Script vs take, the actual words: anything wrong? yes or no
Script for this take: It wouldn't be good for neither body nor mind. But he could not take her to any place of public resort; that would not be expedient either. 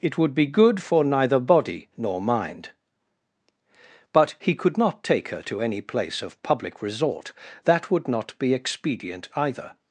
yes